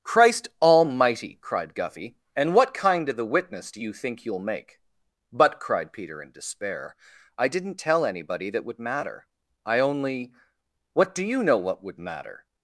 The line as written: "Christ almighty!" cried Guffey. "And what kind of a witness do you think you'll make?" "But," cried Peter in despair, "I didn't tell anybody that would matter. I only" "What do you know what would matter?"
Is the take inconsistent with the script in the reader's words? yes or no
yes